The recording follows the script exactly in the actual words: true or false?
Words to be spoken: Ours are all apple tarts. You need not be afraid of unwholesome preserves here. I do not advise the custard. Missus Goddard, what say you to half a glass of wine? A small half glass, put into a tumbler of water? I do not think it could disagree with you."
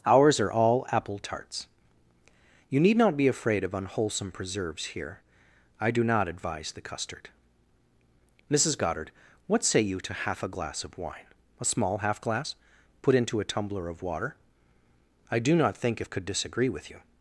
false